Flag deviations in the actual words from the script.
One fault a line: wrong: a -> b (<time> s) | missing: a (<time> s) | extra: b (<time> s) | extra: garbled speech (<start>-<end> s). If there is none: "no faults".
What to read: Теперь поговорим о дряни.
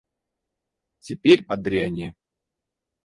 missing: поговорим (1.4 s)